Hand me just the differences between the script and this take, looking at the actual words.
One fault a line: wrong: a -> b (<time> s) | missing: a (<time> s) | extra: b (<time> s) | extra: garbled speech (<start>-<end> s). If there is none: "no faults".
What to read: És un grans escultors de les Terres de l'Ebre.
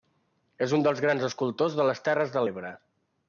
extra: dels (0.9 s)